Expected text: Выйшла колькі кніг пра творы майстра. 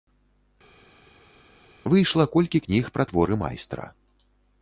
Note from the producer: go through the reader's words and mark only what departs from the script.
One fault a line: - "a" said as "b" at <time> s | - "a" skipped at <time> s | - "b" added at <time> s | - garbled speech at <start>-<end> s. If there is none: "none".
none